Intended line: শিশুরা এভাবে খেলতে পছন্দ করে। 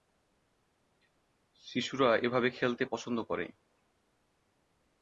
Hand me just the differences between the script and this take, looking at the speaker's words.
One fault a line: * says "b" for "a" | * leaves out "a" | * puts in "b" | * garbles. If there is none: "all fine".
all fine